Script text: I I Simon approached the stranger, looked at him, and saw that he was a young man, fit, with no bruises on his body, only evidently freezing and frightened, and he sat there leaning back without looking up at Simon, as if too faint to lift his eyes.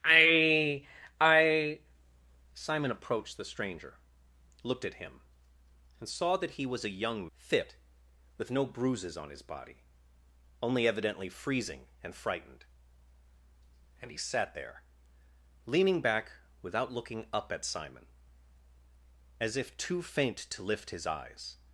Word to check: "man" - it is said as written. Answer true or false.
false